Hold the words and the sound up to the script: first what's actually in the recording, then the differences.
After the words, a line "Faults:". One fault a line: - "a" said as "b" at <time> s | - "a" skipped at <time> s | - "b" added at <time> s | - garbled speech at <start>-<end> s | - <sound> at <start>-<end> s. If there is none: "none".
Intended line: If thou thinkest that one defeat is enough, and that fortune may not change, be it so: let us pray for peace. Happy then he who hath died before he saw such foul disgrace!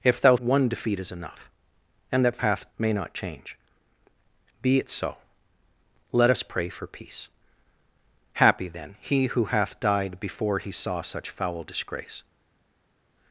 If thou one defeat is enough, and that hath may not change, be it so: let us pray for peace. Happy then he who hath died before he saw such foul disgrace!
Faults:
- "thinkest that" skipped at 0.3 s
- "fortune" said as "hath" at 2.4 s